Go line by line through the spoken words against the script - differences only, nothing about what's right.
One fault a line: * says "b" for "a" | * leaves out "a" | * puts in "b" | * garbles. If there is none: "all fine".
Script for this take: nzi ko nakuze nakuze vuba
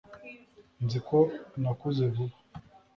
* leaves out "nakuze"